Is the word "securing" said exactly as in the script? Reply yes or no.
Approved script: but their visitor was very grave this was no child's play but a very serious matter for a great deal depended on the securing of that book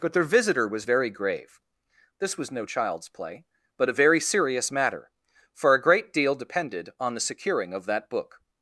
yes